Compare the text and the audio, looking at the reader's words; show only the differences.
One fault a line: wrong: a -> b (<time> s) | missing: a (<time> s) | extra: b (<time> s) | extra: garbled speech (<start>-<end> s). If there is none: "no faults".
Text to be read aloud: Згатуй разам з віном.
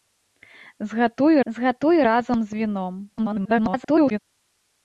extra: згатуй (1.5 s)
extra: garbled speech (3.2-4.2 s)